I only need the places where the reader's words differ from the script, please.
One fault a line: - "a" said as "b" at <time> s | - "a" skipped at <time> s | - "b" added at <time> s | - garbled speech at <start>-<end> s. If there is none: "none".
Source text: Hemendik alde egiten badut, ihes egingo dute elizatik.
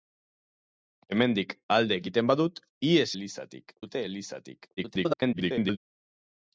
- "egingo" said as "elizatik" at 3.2 s
- garbled speech at 4.8-5.8 s